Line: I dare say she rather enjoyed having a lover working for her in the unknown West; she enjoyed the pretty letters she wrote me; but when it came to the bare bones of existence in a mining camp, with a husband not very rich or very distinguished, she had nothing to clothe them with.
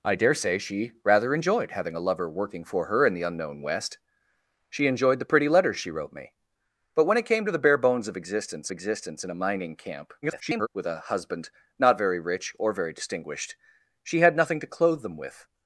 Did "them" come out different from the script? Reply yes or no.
no